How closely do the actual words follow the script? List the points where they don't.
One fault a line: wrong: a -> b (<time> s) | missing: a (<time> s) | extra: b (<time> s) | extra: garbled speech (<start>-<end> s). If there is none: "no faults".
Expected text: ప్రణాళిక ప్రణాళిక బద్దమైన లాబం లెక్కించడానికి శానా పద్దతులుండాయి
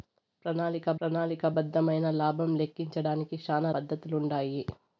no faults